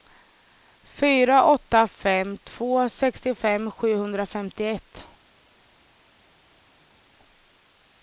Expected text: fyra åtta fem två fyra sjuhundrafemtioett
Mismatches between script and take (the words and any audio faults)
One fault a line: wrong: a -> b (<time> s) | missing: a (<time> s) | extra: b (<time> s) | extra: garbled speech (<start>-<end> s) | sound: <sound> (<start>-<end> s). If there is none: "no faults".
wrong: fyra -> sextiofem (2.9 s)